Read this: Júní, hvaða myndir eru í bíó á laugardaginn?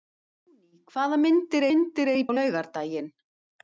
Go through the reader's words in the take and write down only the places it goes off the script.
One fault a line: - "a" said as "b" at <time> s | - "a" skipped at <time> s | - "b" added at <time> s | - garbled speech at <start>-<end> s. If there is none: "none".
- "myndir" added at 1.7 s
- "bíó" skipped at 2.3 s